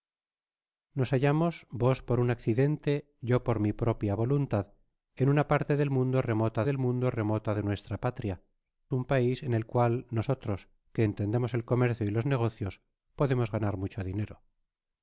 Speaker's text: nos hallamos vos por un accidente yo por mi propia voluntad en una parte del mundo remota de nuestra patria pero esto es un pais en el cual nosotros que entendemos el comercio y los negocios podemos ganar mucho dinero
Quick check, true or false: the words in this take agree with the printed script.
false